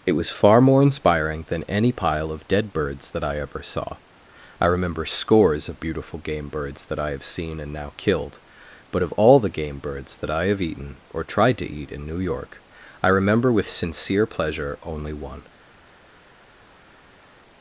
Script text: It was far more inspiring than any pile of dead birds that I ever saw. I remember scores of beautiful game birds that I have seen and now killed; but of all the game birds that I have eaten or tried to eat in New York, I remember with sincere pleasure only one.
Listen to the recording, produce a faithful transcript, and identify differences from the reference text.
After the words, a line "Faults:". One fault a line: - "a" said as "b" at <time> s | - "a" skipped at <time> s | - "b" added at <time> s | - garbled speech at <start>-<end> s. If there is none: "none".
It was far more inspiring than any pile of dead birds that I ever saw. I remember scores of beautiful game birds that I have seen and now killed; but of all the game birds that I have eaten or tried to eat in New York, I remember with sincere pleasure only one.
Faults:
none